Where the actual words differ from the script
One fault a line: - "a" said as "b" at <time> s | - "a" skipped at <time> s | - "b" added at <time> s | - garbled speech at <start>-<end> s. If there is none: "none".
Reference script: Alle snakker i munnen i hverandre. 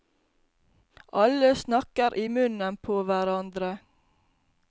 - "i" said as "på" at 2.8 s